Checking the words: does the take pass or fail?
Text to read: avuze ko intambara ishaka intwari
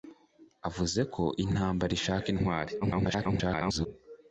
fail